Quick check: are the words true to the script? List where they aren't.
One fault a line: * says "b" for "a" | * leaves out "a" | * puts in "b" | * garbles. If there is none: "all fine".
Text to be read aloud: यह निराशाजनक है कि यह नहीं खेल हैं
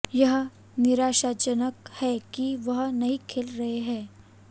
* says "वह" for "यह"
* puts in "रहे"